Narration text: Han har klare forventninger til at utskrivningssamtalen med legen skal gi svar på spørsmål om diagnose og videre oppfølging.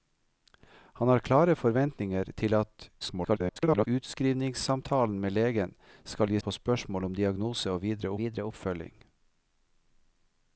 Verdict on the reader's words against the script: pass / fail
fail